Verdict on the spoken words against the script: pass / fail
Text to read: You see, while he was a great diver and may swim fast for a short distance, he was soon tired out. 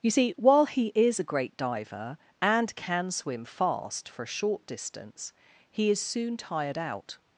fail